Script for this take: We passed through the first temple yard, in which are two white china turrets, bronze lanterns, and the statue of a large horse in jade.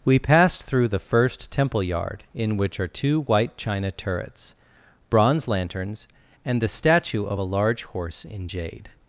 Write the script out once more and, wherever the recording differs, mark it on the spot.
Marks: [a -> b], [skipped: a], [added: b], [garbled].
We passed through the first temple yard, in which are two white china turrets, bronze lanterns, and the statue of a large horse in jade.